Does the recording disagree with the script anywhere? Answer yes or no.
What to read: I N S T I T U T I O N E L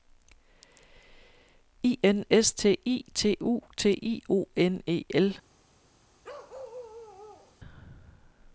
no